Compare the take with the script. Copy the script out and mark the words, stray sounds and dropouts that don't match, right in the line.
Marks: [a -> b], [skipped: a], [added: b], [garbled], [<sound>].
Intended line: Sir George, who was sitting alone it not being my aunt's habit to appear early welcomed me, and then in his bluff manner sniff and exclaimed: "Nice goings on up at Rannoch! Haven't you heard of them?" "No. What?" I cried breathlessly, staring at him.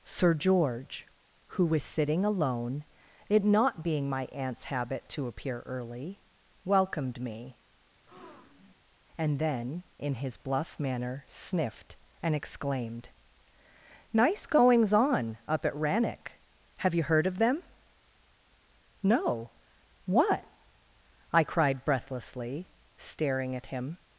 Sir George, who was sitting alone it not being my aunt's habit to appear early welcomed me, [breath] and then in his bluff manner [sniff -> sniffed] and exclaimed: "Nice goings on up at Rannoch! [Haven't -> Have] you heard of them?" "No. What?" I cried breathlessly, staring at him.